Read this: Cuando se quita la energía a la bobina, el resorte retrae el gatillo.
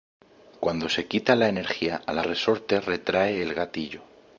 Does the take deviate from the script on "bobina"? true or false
true